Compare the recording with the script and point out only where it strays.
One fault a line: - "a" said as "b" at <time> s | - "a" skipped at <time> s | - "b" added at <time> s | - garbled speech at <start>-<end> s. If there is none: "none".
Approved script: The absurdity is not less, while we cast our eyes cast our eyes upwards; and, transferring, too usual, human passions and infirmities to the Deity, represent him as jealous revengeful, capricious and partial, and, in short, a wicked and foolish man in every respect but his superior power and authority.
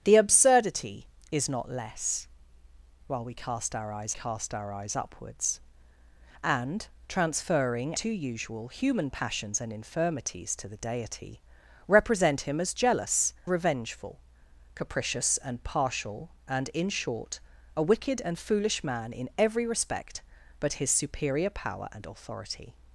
none